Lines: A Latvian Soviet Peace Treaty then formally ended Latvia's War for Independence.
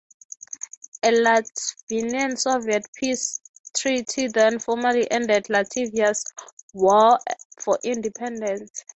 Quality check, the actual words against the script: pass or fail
pass